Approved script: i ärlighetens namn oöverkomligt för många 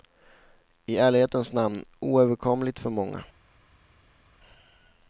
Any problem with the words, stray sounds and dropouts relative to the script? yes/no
no